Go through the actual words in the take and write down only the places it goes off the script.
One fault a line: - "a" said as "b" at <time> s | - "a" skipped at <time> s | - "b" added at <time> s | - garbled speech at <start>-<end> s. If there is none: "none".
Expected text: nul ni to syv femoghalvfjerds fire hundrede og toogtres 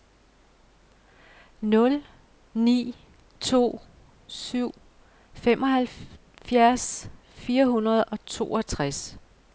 none